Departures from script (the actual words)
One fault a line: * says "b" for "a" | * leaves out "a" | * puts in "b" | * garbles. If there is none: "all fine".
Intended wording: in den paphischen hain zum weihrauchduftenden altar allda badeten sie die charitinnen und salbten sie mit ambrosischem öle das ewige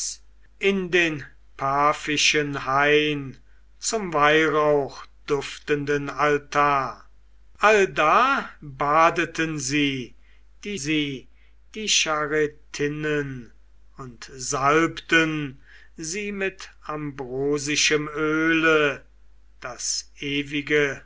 * puts in "sie die"